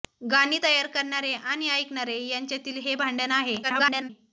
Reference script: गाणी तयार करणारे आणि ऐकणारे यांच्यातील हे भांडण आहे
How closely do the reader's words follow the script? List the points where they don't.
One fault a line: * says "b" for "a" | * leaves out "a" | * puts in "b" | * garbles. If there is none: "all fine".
* garbles